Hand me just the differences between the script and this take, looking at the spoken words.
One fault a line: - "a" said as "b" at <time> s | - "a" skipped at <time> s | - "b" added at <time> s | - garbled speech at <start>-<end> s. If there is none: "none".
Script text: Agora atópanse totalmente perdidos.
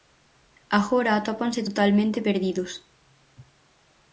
none